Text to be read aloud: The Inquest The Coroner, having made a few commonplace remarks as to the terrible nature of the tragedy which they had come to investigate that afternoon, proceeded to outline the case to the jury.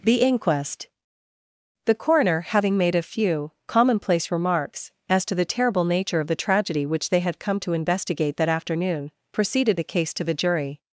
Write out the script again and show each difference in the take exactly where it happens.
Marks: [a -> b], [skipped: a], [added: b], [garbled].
The Inquest The Coroner, having made a few commonplace remarks as to the terrible nature of the tragedy which they had come to investigate that afternoon, proceeded [skipped: to outline] the case to the jury.